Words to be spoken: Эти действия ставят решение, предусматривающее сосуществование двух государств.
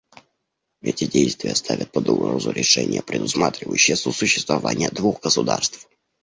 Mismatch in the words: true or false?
true